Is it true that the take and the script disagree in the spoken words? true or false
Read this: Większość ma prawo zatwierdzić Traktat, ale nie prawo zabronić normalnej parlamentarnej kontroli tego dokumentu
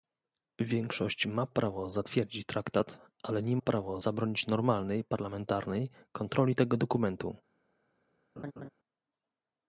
false